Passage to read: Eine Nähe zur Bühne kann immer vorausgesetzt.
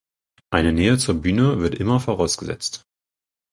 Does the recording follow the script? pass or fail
fail